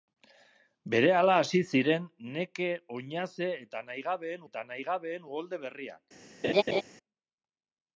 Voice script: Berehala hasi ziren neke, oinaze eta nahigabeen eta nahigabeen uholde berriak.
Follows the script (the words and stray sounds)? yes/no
no